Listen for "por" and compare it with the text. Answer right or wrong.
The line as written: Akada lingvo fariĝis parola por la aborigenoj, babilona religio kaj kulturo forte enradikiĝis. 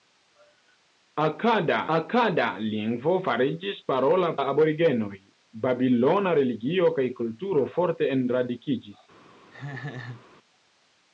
wrong